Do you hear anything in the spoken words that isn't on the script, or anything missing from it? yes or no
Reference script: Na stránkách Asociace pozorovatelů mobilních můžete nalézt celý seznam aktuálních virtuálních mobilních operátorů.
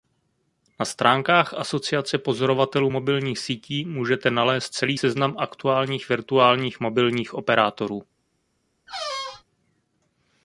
yes